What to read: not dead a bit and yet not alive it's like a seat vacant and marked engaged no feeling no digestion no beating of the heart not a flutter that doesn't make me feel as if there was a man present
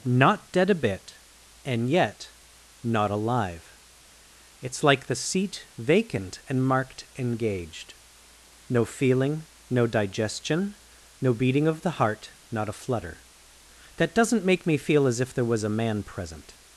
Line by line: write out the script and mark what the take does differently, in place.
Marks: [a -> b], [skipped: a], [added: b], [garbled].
not dead a bit and yet not alive it's like [a -> the] seat vacant and marked engaged no feeling no digestion no beating of the heart not a flutter that doesn't make me feel as if there was a man present